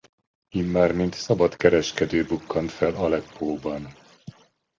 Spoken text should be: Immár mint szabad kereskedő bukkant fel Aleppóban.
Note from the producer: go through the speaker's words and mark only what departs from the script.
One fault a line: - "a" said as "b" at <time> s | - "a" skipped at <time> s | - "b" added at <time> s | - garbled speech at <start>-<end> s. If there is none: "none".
none